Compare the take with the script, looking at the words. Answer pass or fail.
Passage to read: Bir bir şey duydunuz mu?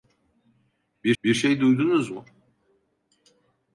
pass